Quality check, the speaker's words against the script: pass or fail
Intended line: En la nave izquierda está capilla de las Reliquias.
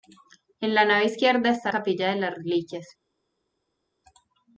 pass